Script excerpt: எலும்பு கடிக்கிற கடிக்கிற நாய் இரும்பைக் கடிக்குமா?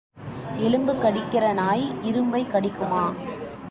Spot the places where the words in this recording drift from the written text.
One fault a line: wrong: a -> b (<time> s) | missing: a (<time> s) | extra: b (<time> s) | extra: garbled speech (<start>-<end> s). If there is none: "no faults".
missing: கடிக்கிற (1.5 s)